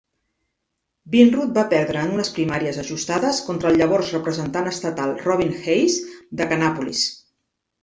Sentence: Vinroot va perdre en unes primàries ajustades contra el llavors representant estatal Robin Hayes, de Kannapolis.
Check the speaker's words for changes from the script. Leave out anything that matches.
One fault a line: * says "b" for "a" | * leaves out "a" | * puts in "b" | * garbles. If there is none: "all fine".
all fine